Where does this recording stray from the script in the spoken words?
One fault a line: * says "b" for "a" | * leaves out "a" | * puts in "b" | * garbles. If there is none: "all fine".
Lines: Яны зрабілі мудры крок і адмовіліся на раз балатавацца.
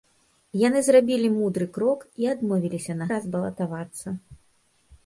all fine